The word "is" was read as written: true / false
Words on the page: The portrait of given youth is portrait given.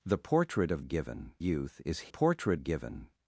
true